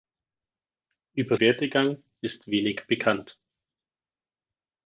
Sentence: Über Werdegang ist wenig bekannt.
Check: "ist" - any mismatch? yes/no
no